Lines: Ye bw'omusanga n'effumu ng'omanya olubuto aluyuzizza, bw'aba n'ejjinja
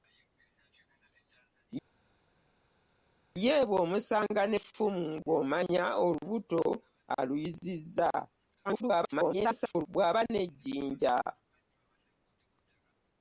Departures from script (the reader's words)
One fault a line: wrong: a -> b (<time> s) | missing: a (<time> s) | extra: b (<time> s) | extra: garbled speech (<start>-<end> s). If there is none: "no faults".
extra: garbled speech (8.6-9.9 s)